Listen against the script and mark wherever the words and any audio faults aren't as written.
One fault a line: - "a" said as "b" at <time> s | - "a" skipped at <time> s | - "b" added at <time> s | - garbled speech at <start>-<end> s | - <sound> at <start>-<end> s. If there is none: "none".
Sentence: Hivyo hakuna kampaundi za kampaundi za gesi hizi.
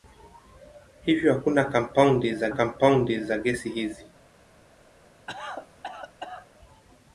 - cough at 5.3-6.5 s